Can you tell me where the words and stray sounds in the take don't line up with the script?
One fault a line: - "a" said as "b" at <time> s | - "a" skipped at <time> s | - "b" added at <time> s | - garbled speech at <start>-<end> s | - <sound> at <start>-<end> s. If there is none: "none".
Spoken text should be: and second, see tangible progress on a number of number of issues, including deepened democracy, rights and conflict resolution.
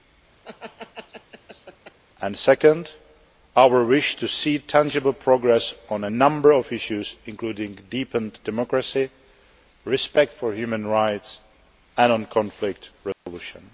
- laugh at 0.4-2.0 s
- "our wish to" added at 3.6 s
- "number of" skipped at 6.7 s
- "respect for human" added at 9.8 s
- dropout at 13.1-13.3 s